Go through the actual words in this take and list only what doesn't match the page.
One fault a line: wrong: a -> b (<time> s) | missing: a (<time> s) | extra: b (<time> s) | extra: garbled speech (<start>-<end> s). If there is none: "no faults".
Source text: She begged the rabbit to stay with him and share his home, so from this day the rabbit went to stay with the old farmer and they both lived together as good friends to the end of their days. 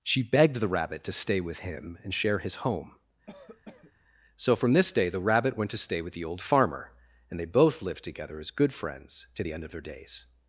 no faults